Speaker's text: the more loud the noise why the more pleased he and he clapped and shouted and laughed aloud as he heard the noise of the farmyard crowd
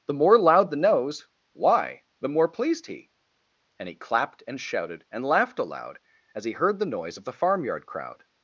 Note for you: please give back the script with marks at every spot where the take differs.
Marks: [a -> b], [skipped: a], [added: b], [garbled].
the more loud the [noise -> nose] why the more pleased he and he clapped and shouted and laughed aloud as he heard the noise of the farmyard crowd